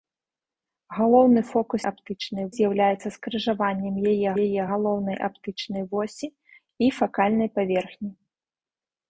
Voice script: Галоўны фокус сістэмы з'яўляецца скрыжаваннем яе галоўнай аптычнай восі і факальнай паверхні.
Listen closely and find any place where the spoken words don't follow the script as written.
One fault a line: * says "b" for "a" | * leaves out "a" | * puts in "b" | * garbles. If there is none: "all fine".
* says "аптычнай" for "сістэмы"
* puts in "яе"